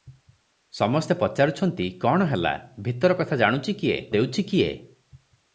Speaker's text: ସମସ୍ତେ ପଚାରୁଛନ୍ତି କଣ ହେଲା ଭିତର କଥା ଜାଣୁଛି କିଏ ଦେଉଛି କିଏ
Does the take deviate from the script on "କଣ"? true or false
false